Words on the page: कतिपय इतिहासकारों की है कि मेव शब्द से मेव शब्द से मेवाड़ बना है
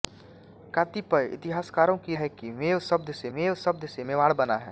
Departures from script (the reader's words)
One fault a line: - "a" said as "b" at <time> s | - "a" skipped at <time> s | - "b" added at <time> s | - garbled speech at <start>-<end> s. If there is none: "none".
none